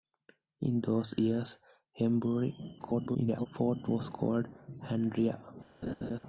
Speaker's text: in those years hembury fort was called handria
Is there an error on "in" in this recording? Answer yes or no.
no